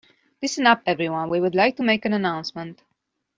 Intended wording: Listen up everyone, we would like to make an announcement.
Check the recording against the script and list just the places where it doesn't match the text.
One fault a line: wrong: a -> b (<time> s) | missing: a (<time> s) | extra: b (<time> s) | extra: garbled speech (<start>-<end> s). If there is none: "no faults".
no faults